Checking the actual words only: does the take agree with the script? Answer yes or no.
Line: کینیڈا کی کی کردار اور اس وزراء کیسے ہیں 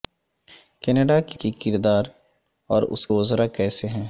yes